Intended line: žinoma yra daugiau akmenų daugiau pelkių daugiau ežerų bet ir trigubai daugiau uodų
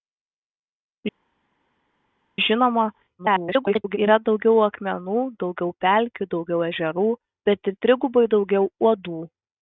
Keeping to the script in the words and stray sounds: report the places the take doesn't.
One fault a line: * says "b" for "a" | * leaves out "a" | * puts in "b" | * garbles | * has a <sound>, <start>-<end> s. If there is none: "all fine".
* garbles